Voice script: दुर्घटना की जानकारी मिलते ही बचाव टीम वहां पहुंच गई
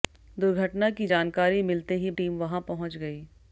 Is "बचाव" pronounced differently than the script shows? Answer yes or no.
yes